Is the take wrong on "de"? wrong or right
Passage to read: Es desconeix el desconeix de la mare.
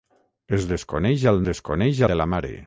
right